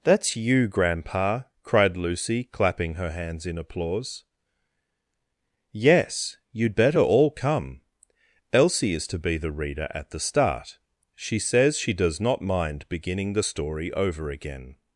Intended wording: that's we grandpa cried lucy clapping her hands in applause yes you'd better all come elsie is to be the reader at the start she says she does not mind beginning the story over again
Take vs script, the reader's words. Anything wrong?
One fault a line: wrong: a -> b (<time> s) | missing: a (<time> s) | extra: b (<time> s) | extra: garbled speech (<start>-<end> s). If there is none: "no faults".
wrong: we -> you (0.3 s)